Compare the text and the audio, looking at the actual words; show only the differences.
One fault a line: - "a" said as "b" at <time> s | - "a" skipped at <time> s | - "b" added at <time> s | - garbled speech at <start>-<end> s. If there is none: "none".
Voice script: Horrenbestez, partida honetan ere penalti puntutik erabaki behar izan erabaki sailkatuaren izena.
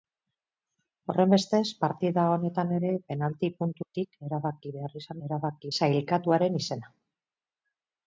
none